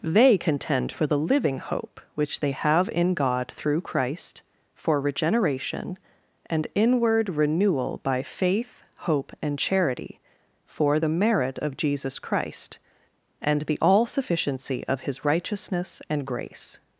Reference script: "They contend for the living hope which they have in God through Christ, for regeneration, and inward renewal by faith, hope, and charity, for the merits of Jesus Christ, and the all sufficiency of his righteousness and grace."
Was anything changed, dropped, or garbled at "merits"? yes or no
yes